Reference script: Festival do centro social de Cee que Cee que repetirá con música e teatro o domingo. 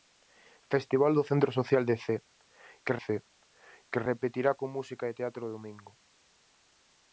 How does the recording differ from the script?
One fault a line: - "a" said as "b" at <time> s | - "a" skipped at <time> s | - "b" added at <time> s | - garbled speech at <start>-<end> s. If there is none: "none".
none